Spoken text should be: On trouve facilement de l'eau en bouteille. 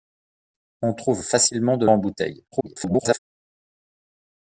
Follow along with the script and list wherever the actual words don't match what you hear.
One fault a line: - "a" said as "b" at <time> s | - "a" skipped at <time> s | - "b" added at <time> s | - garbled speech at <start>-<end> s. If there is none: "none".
- "l'eau" skipped at 1.9 s
- garbled speech at 2.5-3.2 s